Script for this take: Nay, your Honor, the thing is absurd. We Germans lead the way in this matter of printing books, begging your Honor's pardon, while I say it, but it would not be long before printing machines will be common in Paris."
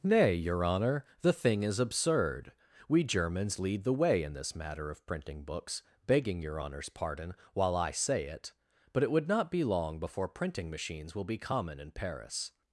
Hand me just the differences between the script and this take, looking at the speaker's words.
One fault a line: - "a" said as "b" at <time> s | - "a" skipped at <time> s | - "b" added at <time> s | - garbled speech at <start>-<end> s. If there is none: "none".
none